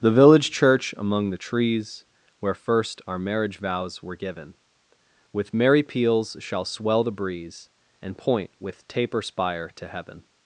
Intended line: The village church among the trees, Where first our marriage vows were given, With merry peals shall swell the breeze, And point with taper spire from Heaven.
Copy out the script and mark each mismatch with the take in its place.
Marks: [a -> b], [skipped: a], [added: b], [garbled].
The village church among the trees, Where first our marriage vows were given, With merry peals shall swell the breeze, And point with taper spire [from -> to] Heaven.